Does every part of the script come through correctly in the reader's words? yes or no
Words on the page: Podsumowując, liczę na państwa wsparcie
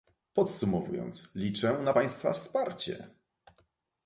yes